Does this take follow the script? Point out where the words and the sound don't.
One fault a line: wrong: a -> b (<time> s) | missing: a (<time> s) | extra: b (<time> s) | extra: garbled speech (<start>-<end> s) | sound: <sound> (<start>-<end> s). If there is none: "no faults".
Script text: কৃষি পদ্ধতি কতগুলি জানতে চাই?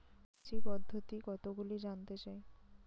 no faults